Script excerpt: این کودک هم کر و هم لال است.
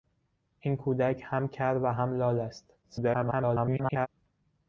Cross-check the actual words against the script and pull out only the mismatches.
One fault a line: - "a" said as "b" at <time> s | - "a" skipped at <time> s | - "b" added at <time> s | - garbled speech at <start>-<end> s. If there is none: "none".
- garbled speech at 2.8-4.1 s